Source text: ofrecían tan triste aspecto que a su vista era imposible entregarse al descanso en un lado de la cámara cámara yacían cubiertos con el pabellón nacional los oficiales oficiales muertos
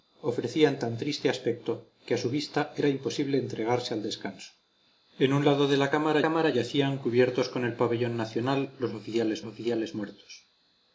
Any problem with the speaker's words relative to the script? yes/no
no